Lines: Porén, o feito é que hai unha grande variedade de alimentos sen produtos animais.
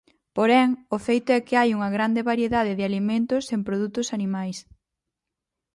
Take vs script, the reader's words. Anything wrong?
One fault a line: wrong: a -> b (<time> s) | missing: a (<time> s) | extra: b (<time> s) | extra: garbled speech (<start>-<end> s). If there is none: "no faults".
no faults